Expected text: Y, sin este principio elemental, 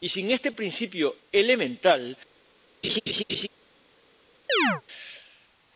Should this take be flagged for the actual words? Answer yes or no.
no